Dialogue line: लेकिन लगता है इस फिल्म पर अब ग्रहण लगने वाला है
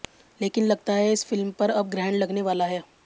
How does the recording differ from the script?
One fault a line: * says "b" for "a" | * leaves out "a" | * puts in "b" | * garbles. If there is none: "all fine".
all fine